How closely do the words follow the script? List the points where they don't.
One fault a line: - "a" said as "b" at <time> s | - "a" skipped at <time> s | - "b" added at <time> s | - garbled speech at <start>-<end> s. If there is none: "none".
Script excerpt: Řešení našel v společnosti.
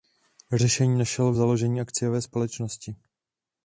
- "založení akciové" added at 1.3 s